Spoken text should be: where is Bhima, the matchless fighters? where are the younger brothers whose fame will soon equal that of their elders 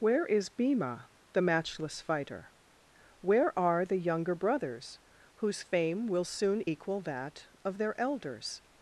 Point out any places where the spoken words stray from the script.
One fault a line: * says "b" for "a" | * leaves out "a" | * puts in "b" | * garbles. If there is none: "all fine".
* says "fighter" for "fighters"